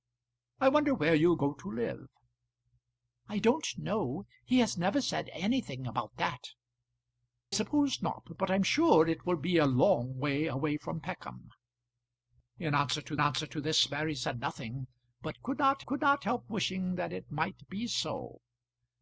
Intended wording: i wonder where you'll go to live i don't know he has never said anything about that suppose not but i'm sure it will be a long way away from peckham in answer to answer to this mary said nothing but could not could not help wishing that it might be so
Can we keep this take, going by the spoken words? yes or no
yes